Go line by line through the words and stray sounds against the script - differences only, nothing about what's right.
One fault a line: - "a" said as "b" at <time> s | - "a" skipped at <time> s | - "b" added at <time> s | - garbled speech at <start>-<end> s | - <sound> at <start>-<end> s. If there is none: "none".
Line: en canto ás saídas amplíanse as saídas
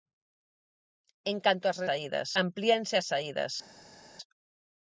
none